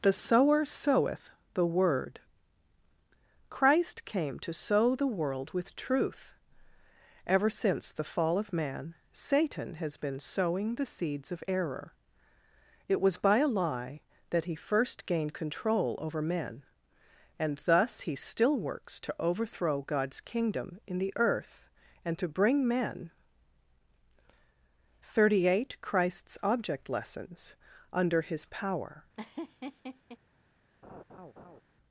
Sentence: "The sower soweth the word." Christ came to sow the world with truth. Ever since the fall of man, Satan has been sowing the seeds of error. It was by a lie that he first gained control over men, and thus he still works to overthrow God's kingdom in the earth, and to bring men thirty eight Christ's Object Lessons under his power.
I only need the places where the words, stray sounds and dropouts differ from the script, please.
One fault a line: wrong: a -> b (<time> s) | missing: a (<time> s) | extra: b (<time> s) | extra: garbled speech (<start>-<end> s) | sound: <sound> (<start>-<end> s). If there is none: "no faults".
sound: laugh (29.1-30.2 s)
sound: laugh (30.8-31.6 s)